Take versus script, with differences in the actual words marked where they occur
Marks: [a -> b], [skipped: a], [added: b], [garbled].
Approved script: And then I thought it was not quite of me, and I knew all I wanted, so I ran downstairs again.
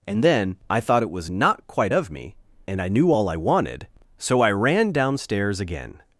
And then I thought it was not quite of me, and I knew all I wanted, so I ran downstairs again.